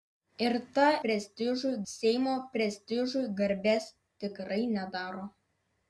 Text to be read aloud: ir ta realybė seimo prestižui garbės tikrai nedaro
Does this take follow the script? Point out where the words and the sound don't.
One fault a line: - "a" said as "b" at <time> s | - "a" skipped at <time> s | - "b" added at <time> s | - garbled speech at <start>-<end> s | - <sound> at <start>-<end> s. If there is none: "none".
- "realybė" said as "prestižui" at 1.1 s